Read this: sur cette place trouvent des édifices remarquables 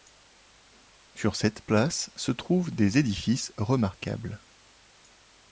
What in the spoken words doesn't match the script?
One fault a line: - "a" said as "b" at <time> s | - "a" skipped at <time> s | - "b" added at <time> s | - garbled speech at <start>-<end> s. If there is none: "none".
- "se" added at 2.1 s